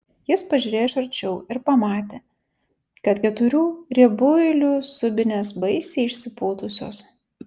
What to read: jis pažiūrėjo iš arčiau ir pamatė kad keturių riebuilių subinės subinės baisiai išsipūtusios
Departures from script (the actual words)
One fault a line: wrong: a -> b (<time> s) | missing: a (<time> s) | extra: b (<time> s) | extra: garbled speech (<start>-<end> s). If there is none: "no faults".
missing: subinės (5.5 s)